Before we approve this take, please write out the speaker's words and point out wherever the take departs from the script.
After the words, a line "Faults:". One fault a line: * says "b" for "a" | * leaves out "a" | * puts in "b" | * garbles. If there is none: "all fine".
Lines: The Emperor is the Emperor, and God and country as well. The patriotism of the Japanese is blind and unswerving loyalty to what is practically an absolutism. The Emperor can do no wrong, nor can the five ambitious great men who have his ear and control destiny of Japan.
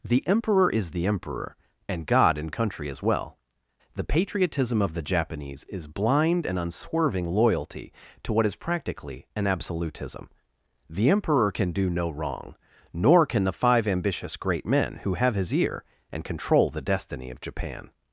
The Emperor is the Emperor, and God and country as well. The patriotism of the Japanese is blind and unswerving loyalty to what is practically an absolutism. The Emperor can do no wrong, nor can the five ambitious great men who have his ear and control the destiny of Japan.
Faults:
* puts in "the"